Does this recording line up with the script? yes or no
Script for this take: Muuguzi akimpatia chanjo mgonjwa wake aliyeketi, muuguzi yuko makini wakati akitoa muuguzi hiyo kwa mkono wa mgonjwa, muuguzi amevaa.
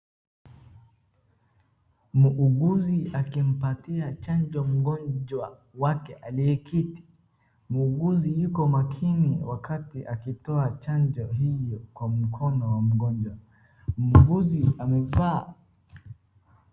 no